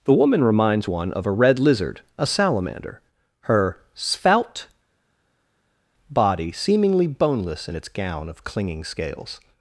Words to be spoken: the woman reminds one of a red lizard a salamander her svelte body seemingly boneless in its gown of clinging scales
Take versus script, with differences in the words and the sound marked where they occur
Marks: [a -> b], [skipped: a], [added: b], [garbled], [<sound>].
the woman reminds one of a red lizard a salamander her svelte body seemingly boneless in its gown of clinging scales